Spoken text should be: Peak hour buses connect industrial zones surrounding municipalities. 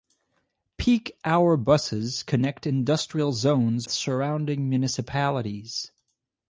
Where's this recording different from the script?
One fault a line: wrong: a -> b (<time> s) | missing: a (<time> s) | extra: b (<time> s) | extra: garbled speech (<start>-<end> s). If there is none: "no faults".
no faults